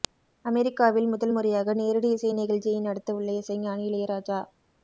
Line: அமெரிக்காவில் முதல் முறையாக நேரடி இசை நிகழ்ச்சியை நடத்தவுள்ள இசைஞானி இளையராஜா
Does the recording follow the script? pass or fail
pass